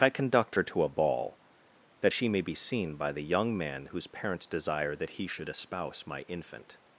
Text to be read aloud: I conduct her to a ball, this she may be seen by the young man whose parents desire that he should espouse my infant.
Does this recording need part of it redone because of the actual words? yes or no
yes